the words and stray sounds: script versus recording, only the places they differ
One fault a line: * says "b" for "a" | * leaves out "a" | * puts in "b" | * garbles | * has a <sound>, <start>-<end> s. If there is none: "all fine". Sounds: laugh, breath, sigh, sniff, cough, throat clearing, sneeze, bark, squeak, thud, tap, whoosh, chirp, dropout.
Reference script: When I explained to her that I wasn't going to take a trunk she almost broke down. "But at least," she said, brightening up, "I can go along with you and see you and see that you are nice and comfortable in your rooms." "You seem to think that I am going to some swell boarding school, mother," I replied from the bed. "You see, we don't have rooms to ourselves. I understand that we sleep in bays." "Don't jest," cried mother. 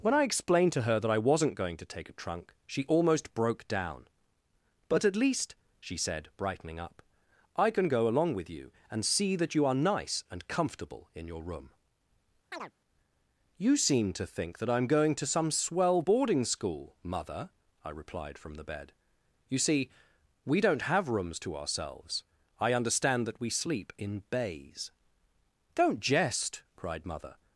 * leaves out "you and see"
* says "room" for "rooms"
* has a chirp, 12.5-12.7 s